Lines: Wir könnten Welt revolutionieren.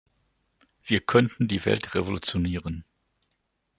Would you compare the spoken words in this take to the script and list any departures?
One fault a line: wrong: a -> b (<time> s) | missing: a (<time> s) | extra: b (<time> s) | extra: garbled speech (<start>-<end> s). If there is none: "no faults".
extra: die (1.5 s)